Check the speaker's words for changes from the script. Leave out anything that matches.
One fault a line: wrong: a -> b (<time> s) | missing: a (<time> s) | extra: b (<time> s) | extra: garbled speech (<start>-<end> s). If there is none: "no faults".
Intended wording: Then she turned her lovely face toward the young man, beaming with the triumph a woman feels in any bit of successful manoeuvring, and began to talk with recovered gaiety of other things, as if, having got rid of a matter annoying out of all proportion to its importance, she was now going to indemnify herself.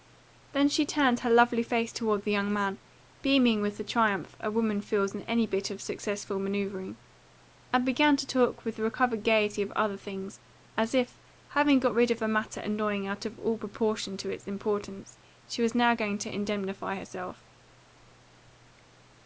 no faults